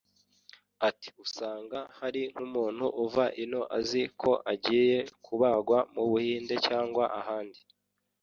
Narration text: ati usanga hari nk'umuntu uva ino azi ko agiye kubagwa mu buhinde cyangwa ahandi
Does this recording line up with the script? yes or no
yes